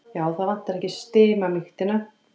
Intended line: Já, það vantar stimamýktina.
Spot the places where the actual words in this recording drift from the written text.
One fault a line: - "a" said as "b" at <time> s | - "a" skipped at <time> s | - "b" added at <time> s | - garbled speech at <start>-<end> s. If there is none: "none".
- "ekki" added at 0.8 s